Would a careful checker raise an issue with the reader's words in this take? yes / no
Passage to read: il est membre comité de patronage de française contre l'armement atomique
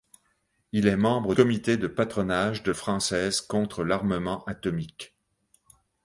no